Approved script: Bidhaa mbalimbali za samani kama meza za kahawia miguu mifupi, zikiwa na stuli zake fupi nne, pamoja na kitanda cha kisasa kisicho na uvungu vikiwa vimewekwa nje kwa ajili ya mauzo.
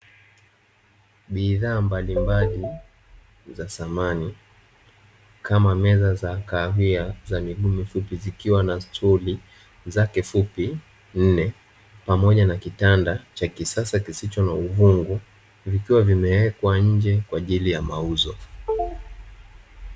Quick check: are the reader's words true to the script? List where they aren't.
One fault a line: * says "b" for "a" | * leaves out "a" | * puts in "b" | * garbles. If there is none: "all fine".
* puts in "za"